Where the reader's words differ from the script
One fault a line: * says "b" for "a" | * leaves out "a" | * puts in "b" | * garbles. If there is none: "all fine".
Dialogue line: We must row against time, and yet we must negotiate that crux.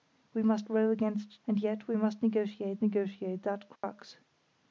* leaves out "time"
* puts in "negotiate"